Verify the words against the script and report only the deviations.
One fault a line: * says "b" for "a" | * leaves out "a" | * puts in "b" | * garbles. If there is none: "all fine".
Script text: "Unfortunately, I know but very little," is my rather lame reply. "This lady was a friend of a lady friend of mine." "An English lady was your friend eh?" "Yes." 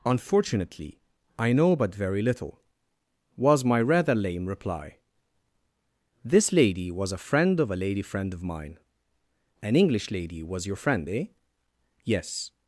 * says "was" for "is"